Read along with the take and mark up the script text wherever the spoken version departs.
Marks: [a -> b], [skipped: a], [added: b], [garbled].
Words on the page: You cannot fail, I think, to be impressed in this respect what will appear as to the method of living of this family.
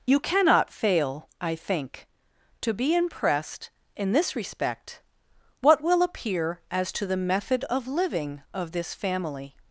You cannot fail, I think, to be impressed in this respect what will appear as to the method of living of this family.